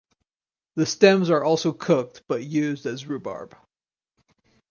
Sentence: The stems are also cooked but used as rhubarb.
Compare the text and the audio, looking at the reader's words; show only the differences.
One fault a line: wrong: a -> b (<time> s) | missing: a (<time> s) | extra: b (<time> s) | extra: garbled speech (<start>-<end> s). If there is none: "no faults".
no faults